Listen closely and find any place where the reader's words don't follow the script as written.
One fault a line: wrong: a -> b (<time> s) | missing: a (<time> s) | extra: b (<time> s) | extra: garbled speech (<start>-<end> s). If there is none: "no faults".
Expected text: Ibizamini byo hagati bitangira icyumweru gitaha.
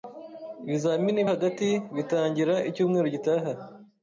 missing: byo (1.2 s)